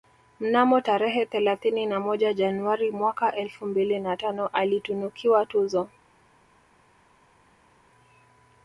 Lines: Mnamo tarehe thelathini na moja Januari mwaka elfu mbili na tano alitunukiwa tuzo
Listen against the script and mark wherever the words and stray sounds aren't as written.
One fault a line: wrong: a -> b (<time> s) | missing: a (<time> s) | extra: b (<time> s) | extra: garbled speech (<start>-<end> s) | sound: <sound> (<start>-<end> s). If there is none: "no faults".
no faults